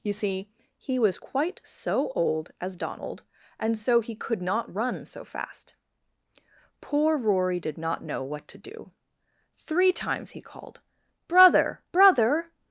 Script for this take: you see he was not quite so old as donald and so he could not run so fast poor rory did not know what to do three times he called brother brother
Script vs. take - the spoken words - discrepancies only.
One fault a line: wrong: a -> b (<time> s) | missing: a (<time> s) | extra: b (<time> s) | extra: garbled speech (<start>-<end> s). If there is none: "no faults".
missing: not (1.2 s)